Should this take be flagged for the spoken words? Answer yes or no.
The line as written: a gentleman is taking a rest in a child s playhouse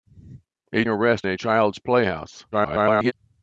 yes